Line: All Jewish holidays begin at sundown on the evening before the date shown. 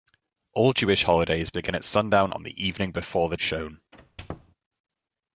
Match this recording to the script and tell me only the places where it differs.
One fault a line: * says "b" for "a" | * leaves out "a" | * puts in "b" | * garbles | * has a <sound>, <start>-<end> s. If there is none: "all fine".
* leaves out "date"
* has a squeak, 3.9-4.6 s